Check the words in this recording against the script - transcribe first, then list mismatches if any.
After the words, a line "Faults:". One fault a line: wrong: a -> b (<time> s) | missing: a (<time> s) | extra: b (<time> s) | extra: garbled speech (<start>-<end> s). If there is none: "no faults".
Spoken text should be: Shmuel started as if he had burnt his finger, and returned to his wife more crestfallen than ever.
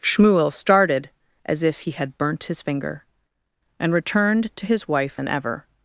Shmuel started as if he had burnt his finger, and returned to his wife than ever.
Faults:
missing: more crestfallen (5.2 s)